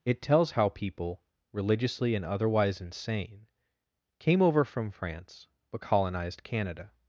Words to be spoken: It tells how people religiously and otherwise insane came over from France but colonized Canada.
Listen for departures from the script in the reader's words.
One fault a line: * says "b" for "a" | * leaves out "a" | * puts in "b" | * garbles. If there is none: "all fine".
all fine